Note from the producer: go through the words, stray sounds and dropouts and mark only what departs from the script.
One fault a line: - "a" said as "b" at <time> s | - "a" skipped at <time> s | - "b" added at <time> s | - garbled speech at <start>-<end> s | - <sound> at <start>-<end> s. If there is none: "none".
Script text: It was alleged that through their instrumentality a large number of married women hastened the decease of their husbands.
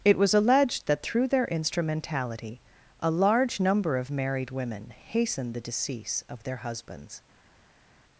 none